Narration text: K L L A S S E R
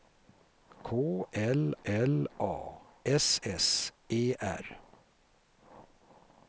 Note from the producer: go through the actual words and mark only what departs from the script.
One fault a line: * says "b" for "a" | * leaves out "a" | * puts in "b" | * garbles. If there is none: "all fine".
all fine